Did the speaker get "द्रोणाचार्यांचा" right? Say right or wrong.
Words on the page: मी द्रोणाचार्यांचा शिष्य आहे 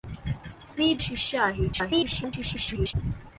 wrong